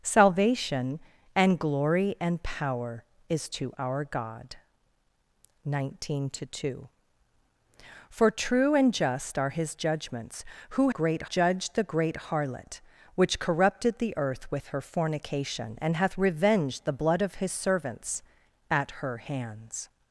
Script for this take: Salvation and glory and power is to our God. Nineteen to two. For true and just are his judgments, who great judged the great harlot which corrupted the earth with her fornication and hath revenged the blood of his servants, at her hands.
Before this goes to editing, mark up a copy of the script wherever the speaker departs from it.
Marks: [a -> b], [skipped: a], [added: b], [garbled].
Salvation and glory and power is to our God. Nineteen to two. For true and just are his judgments, who great judged the great harlot which corrupted the earth with her fornication and hath revenged the blood of his servants, at her hands.